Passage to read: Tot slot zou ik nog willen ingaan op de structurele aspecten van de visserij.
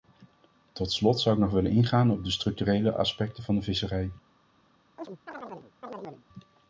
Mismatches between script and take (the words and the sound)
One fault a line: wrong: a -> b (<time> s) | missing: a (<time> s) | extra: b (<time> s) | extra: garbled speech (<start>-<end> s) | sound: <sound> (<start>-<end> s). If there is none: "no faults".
sound: chirp (5.0-6.2 s)